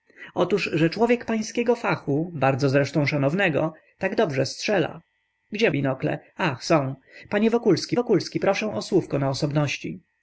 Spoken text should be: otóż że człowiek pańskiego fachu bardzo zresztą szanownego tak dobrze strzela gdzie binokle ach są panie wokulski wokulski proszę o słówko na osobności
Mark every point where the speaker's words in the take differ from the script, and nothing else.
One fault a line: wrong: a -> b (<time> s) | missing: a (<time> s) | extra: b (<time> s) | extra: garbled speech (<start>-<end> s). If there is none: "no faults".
no faults